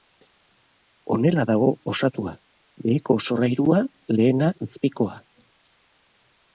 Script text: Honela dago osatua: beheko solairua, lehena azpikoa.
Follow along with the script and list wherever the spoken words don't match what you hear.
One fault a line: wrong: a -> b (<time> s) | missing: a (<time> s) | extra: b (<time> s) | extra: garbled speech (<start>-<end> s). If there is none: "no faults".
no faults